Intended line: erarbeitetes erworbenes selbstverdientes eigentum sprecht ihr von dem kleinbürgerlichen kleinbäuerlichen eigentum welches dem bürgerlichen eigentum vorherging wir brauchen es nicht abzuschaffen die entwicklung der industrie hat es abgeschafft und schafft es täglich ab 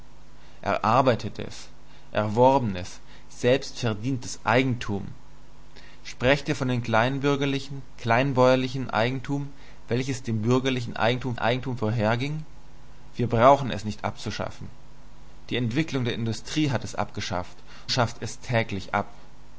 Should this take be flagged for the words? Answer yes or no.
yes